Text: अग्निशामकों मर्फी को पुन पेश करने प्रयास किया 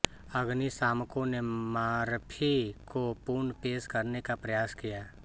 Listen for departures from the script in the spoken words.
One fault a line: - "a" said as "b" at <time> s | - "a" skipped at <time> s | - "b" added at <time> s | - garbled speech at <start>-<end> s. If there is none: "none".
- "ने" added at 1.2 s
- "का" added at 4.2 s